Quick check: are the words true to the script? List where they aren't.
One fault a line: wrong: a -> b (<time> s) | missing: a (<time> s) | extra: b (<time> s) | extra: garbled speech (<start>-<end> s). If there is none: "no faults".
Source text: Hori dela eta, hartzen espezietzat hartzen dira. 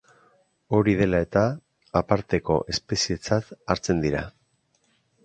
wrong: hartzen -> aparteko (2.0 s)